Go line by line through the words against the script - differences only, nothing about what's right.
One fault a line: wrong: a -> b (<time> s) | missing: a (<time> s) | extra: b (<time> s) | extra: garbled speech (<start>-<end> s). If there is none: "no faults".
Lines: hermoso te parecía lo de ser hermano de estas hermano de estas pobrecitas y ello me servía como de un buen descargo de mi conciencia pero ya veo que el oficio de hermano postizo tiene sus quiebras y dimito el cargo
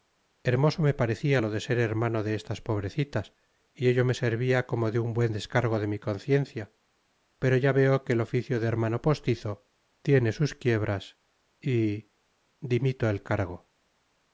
wrong: te -> me (0.8 s)
missing: hermano de estas (2.6 s)